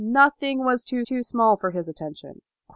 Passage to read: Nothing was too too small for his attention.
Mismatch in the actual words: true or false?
false